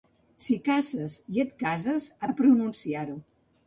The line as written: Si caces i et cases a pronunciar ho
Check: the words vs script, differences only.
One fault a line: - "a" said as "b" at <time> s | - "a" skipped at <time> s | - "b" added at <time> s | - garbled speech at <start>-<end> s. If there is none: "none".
none